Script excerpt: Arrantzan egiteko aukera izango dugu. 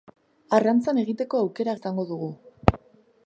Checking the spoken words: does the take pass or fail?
pass